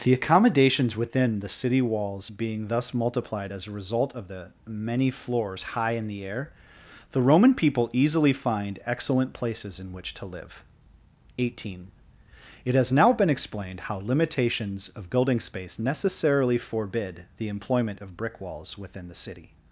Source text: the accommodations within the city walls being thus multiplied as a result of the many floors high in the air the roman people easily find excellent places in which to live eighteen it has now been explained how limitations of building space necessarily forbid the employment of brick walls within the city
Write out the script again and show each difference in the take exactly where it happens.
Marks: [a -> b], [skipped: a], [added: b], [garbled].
the accommodations within the city walls being thus multiplied as a result of the many floors high in the air the roman people easily find excellent places in which to live eighteen it has now been explained how limitations of building space necessarily forbid the employment of brick walls within the city